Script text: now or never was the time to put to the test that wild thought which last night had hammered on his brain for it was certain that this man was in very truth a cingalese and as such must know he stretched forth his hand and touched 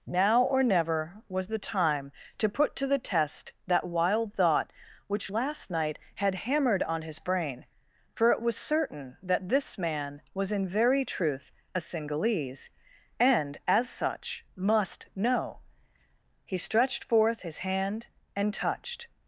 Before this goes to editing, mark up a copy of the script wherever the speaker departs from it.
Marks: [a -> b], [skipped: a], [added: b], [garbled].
now or never was the time to put to the test that wild thought which last night had hammered on his brain for it was certain that this man was in very truth a cingalese and as such must know he stretched forth his hand and touched